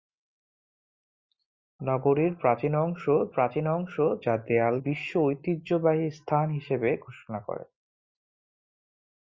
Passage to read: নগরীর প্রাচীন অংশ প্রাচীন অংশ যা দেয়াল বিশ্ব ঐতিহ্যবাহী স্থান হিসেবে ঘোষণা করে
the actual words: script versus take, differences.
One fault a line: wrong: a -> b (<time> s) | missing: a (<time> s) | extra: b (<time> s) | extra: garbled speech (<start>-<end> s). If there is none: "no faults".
no faults